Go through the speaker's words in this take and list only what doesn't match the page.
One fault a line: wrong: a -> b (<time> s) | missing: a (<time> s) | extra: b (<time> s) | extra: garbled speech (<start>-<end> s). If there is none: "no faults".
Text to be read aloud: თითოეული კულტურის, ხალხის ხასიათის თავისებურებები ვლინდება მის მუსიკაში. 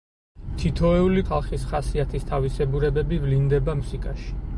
missing: კულტურის (1.2 s)
missing: მის (3.8 s)